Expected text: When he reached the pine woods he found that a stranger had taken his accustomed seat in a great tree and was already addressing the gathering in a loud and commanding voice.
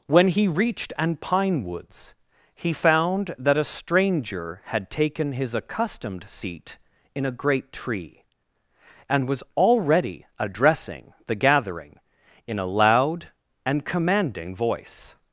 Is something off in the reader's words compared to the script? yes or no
yes